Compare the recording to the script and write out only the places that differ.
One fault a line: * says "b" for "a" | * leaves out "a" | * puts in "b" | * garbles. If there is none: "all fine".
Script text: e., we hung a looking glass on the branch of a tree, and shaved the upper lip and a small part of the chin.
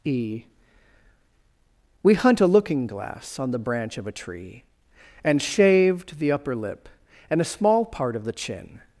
* says "hunt" for "hung"